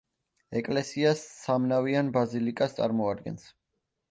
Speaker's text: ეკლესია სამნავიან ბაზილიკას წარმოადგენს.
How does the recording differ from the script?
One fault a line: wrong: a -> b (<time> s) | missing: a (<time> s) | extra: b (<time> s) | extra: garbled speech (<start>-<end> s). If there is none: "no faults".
no faults